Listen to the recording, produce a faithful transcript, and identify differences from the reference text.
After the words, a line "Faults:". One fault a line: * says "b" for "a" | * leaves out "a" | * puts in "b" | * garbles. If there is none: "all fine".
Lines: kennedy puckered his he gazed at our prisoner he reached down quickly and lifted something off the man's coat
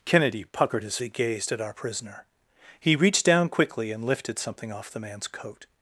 kennedy puckered his he gazed at our prisoner he reached down quickly and lifted something off the man's coat
Faults:
all fine